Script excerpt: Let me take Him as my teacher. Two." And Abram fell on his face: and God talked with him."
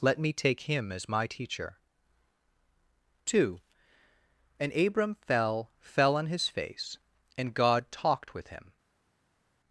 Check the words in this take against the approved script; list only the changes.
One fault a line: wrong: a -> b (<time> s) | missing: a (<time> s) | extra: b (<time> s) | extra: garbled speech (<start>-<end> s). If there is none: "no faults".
extra: fell (5.8 s)